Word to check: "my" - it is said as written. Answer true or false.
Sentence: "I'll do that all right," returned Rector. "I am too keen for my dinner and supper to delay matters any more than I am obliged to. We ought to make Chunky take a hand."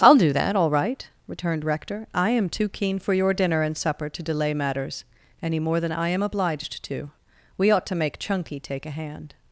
false